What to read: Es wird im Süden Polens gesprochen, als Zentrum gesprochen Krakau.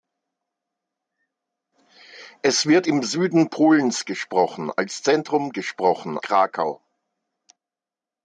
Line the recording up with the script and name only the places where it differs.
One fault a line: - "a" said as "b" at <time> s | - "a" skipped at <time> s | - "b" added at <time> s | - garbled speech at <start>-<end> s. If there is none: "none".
none